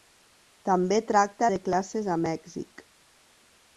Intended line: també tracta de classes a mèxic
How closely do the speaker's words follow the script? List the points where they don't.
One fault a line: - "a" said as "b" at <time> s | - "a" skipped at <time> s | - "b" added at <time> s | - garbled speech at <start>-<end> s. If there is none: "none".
none